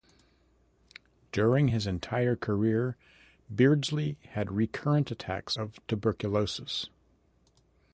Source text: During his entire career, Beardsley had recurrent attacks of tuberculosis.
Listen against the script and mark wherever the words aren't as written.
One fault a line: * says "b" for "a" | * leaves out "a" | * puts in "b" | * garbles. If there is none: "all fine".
all fine